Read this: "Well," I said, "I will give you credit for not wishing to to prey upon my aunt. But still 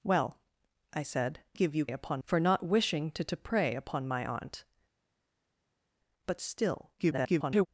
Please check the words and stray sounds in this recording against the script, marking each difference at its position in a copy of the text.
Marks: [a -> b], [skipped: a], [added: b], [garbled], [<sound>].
"Well," I said, [skipped: "I will] give you [credit -> upon] for not wishing to to prey upon my aunt. But still [garbled]